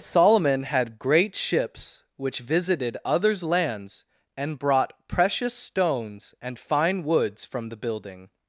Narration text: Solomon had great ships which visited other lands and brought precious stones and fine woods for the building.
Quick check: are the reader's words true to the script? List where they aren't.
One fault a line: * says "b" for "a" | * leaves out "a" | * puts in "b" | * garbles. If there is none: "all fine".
* says "others" for "other"
* says "from" for "for"